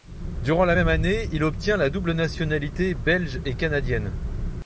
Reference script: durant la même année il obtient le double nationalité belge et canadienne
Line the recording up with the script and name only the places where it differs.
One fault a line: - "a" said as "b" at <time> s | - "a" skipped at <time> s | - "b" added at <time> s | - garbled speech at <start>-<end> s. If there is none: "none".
- "le" said as "la" at 1.8 s